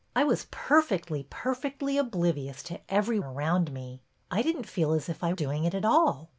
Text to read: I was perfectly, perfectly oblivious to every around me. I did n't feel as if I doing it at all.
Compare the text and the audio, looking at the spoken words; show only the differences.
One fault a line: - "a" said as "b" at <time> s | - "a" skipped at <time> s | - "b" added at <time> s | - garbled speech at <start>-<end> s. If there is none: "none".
none